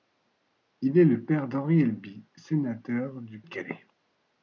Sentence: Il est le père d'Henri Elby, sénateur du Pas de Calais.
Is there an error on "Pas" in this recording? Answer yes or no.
yes